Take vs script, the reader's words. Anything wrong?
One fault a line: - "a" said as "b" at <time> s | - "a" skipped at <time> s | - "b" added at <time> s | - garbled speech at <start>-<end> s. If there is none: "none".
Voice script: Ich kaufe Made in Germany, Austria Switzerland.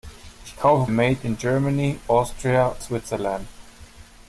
none